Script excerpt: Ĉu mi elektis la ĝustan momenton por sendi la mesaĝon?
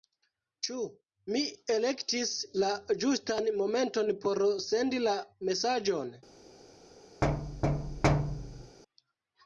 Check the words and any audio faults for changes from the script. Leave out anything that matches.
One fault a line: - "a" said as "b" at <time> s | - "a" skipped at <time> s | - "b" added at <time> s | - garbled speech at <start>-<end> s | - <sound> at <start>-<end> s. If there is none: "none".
- thud at 7.2-8.8 s